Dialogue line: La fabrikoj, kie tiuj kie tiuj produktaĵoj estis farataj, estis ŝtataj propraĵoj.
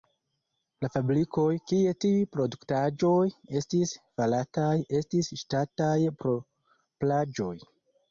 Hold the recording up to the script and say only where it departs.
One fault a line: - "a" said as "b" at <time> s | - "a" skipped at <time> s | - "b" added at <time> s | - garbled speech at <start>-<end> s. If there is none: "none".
- "kie tiuj" skipped at 2.2 s